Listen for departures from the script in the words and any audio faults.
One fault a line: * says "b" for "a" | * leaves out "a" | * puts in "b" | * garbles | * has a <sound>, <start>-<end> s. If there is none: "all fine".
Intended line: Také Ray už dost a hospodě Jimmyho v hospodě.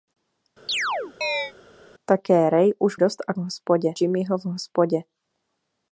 * has a chirp, 0.7-1.5 s